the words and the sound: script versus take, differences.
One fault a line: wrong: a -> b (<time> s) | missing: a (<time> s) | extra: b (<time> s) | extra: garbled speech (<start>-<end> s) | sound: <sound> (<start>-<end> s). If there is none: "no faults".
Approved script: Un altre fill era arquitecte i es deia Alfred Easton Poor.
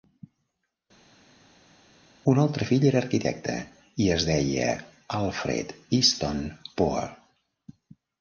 no faults